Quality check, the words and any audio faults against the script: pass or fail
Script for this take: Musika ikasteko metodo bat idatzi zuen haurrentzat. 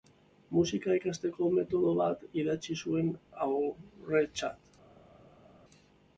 pass